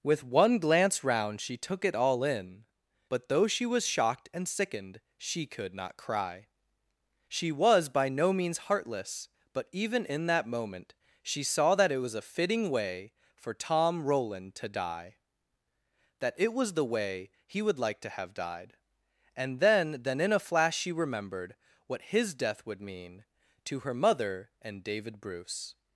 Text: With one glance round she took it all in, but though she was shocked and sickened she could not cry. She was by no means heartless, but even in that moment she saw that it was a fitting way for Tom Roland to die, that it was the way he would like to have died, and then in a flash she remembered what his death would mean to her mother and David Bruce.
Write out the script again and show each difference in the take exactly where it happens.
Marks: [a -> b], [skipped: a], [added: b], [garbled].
With one glance round she took it all in, but though she was shocked and sickened she could not cry. She was by no means heartless, but even in that moment she saw that it was a fitting way for Tom Roland to die, that it was the way he would like to have died, and then [added: then] in a flash she remembered what his death would mean to her mother and David Bruce.